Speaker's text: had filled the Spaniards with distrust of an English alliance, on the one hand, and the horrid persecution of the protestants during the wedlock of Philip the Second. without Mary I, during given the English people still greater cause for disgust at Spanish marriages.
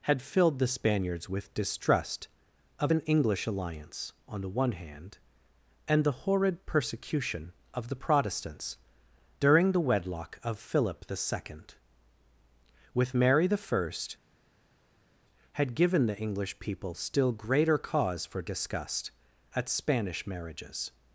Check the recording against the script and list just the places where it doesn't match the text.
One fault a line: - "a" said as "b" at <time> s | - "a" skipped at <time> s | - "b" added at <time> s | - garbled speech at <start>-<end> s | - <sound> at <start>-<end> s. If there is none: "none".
- "without" said as "with" at 12.9 s
- "during" said as "had" at 15.5 s